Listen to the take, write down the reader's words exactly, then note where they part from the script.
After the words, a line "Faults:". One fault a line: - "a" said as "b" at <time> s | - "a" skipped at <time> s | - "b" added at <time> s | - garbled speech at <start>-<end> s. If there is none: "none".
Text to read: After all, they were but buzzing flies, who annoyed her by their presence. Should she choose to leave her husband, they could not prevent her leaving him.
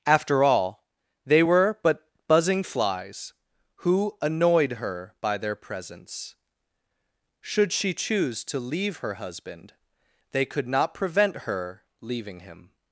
After all, they were but buzzing flies, who annoyed her by their presence. Should she choose to leave her husband, they could not prevent her leaving him.
Faults:
none